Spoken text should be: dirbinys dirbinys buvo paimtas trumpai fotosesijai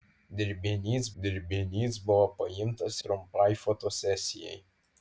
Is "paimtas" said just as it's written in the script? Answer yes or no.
yes